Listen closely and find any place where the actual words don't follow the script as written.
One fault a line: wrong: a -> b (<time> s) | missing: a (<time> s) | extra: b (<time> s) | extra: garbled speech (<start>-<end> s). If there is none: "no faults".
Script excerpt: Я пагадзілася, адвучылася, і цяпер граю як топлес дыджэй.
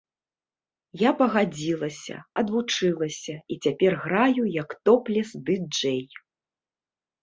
no faults